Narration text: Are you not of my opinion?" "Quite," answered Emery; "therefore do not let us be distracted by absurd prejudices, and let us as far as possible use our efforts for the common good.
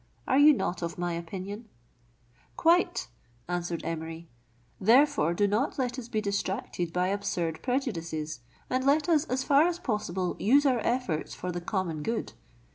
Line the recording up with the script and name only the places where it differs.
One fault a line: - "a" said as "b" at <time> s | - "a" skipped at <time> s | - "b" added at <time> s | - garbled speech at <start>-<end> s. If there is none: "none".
none